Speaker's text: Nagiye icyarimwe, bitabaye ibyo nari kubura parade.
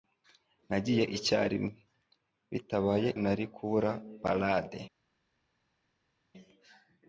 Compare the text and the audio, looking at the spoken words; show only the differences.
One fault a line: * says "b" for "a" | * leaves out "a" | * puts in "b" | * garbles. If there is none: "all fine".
* leaves out "ibyo"